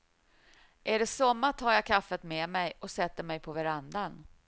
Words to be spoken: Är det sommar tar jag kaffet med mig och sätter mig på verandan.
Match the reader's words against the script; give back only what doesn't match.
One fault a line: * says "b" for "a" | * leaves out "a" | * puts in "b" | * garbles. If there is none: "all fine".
all fine